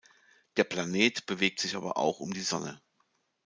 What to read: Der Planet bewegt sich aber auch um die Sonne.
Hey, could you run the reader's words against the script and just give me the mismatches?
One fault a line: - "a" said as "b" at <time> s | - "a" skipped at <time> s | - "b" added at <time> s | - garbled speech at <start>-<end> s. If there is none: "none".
none